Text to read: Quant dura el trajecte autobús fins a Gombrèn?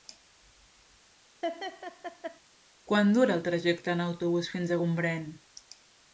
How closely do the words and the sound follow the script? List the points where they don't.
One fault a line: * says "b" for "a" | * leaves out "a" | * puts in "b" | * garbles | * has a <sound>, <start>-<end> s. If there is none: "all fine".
* has a laugh, 1.4-2.4 s
* puts in "en"